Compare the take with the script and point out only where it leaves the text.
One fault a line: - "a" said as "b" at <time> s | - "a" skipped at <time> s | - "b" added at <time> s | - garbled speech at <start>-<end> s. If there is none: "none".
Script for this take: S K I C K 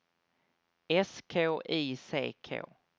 none